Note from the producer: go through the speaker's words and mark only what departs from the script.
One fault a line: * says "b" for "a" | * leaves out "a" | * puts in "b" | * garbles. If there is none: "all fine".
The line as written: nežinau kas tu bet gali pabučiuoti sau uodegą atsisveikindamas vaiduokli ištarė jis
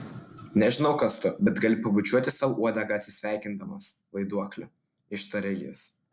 all fine